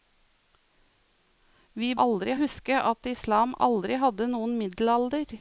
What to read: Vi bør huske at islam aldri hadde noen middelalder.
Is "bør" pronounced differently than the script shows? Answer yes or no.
yes